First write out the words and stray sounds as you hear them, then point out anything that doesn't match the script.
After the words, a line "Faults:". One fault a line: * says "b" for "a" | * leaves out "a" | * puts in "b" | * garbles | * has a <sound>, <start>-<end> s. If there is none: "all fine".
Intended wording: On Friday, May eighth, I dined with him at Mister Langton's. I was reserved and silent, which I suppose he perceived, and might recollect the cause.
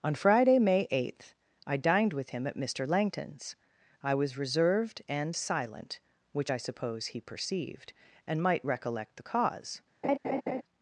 On Friday, May eighth, I dined with him at Mister Langton's. I was reserved and silent, which I suppose he perceived, and might recollect the cause.
Faults:
* has a laugh, 10.0-10.6 s